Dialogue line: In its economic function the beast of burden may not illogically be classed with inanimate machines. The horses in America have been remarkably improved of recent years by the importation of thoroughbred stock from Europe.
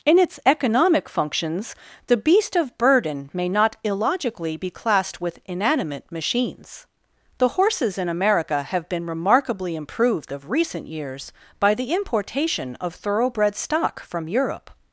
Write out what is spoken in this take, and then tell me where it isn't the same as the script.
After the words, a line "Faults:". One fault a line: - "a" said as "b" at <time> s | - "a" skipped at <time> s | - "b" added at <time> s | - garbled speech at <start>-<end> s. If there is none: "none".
In its economic functions the beast of burden may not illogically be classed with inanimate machines. The horses in America have been remarkably improved of recent years by the importation of thoroughbred stock from Europe.
Faults:
- "function" said as "functions" at 1.1 s